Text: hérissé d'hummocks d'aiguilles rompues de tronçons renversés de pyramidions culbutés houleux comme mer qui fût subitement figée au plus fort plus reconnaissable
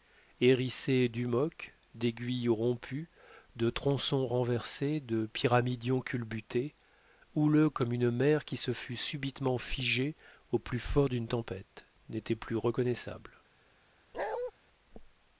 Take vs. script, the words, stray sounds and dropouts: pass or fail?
fail